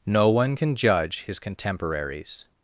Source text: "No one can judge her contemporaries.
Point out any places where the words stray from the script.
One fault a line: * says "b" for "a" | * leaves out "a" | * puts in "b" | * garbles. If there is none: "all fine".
* says "his" for "her"